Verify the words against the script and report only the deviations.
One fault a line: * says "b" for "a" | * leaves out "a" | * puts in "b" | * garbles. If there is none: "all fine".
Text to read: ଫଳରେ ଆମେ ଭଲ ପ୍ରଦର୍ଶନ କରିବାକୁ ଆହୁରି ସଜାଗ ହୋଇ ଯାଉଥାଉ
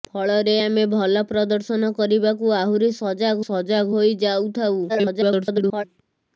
* puts in "ସଜାଗ"
* garbles